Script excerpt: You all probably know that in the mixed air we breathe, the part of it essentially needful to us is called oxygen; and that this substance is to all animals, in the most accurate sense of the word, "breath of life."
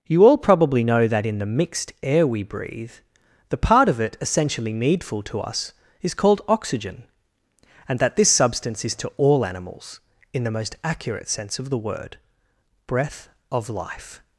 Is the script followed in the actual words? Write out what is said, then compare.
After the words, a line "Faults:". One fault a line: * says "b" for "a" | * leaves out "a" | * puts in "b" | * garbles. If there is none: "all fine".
You all probably know that in the mixed air we breathe, the part of it essentially needful to us is called oxygen; and that this substance is to all animals, in the most accurate sense of the word, "breath of life."
Faults:
all fine